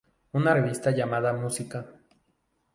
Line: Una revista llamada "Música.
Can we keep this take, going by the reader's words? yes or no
yes